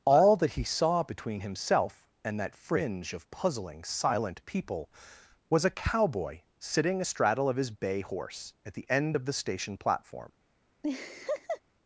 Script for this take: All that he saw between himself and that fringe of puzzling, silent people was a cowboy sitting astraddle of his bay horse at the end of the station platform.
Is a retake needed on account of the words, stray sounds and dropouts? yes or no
yes